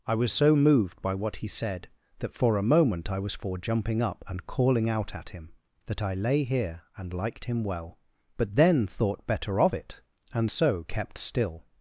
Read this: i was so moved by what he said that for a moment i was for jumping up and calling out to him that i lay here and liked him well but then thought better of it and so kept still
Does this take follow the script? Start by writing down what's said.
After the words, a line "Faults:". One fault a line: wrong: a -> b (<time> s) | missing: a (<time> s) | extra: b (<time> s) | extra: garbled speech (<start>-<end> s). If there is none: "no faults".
i was so moved by what he said that for a moment i was for jumping up and calling out at him that i lay here and liked him well but then thought better of it and so kept still
Faults:
wrong: to -> at (5.2 s)